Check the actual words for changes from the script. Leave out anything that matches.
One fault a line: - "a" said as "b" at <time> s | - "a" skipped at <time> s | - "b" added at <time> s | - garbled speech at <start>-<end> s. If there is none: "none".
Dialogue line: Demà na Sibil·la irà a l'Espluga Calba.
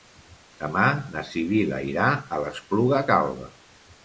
none